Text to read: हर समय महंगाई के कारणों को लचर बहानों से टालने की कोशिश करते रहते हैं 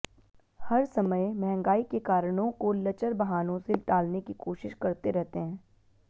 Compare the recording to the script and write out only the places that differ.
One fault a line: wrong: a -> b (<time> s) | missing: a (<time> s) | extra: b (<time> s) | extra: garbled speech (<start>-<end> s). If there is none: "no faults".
no faults